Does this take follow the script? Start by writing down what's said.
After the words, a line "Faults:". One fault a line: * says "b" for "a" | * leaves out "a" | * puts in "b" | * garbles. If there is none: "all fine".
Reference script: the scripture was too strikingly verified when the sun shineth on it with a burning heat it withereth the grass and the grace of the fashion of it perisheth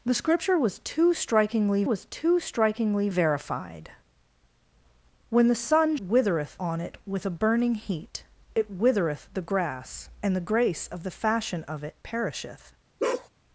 the scripture was too strikingly was too strikingly verified when the sun withereth on it with a burning heat it withereth the grass and the grace of the fashion of it perisheth
Faults:
* puts in "was too strikingly"
* says "withereth" for "shineth"